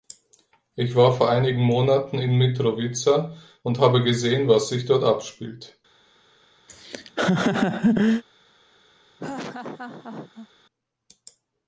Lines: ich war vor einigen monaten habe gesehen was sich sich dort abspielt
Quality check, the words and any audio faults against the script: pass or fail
fail